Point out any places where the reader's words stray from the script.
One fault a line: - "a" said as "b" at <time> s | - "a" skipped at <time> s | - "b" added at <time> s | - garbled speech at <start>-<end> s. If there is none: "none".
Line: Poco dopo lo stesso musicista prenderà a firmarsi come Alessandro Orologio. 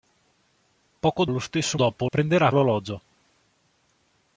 - "dopo" skipped at 1.2 s
- "musicista" said as "dopo" at 1.7 s
- "firmarsi come Alessandro" skipped at 2.5 s